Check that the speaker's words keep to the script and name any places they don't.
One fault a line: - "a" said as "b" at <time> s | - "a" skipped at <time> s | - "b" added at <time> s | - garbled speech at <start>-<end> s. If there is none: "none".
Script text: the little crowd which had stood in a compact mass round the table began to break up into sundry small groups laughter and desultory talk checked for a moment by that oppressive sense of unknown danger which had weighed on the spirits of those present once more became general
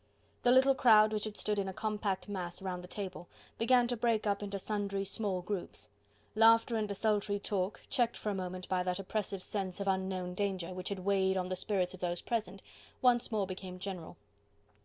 none